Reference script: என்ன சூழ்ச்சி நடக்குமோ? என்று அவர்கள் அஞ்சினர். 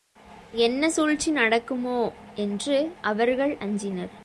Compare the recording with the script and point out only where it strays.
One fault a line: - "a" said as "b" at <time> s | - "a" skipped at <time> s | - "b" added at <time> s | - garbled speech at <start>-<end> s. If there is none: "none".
none